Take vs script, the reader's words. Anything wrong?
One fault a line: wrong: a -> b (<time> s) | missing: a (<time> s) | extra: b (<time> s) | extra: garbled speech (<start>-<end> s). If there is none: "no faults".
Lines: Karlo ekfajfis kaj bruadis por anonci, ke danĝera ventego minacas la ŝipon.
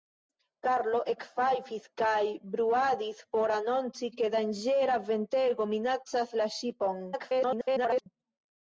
extra: garbled speech (7.1-8.1 s)